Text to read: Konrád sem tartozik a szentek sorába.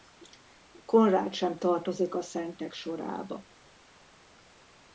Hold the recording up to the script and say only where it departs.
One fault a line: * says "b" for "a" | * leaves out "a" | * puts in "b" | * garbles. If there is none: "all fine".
all fine